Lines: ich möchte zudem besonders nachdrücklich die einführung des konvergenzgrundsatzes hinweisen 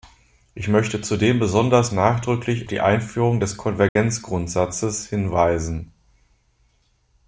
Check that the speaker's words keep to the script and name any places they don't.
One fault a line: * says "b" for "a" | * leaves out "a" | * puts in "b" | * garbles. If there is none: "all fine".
all fine